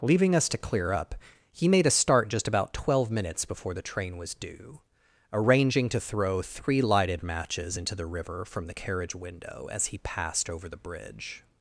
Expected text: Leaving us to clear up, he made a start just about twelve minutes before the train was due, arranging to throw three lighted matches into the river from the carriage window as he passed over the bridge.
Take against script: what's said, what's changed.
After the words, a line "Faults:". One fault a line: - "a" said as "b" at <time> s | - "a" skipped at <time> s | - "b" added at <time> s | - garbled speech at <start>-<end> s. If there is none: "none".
Leaving us to clear up, he made a start just about twelve minutes before the train was due, arranging to throw three lighted matches into the river from the carriage window as he passed over the bridge.
Faults:
none